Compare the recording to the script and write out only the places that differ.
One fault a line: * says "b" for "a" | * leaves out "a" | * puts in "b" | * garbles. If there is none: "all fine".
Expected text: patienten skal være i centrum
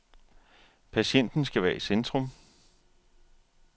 all fine